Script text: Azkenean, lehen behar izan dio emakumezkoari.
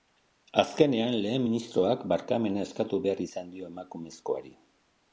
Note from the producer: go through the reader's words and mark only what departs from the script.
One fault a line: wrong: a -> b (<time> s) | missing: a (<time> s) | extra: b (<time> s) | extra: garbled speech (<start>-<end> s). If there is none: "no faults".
extra: ministroak barkamena eskatu (1.5 s)